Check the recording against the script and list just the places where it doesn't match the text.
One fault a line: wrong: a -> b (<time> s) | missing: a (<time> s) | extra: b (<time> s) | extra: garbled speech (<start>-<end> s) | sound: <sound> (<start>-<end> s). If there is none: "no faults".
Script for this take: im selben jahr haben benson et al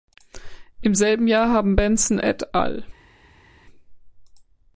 no faults